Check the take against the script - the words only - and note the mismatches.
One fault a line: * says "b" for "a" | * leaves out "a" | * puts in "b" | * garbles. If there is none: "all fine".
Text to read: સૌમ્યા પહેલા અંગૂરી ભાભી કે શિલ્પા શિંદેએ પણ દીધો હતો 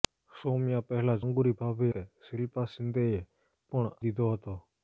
all fine